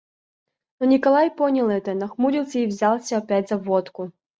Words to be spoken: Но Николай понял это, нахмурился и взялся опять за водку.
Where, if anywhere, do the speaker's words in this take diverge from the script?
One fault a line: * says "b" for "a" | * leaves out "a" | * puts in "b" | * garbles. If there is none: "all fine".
all fine